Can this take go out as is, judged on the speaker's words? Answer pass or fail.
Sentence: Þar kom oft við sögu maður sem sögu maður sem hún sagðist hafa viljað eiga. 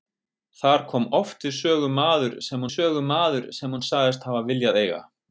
pass